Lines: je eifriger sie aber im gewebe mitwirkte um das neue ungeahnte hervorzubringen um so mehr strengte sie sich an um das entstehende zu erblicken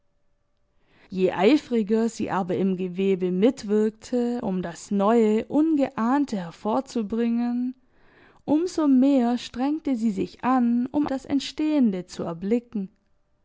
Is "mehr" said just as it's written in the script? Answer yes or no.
yes